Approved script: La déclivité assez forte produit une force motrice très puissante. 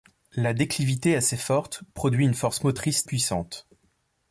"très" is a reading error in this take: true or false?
true